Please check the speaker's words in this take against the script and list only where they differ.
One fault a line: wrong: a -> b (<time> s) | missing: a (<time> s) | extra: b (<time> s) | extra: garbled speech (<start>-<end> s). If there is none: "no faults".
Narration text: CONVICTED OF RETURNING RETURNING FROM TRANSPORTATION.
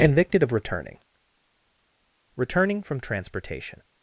no faults